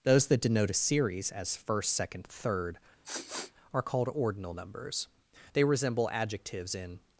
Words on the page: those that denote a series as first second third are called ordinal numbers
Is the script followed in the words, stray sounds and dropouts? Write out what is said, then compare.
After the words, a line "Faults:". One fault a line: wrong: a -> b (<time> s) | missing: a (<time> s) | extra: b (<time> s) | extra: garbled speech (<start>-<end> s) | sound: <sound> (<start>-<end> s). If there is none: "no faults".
those that denote a series as first second third are called ordinal numbers they resemble adjectives in
Faults:
sound: sniff (3.0-3.5 s)
extra: they resemble adjectives in (5.5 s)